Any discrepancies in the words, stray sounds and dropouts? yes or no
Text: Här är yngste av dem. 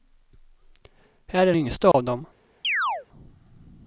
yes